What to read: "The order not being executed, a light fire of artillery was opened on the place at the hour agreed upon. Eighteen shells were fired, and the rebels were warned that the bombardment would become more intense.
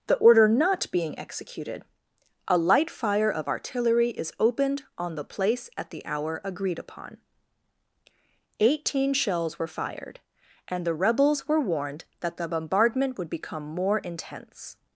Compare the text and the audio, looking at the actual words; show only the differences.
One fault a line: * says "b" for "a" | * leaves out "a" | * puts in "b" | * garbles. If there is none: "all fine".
* says "is" for "was"